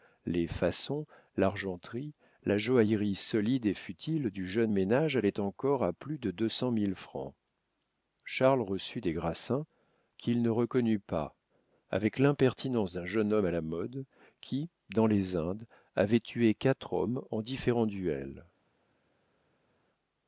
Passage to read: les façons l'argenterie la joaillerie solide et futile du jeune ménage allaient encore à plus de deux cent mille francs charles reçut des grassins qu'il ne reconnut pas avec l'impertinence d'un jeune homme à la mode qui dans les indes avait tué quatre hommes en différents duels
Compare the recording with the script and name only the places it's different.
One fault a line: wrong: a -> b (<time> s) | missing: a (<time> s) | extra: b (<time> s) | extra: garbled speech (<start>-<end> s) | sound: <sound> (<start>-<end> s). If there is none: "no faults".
no faults